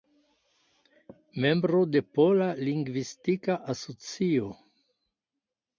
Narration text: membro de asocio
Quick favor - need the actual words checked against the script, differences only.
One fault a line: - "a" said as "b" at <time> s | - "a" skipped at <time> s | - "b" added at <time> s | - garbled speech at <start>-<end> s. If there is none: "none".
- "pola lingvistika" added at 2.2 s